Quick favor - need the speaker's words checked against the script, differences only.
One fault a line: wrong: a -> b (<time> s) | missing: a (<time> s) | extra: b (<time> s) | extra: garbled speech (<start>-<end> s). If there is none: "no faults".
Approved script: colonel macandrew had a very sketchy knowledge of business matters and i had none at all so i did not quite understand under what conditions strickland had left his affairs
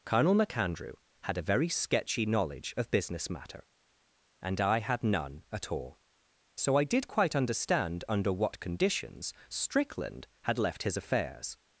wrong: matters -> matter (3.3 s)
missing: not (7.1 s)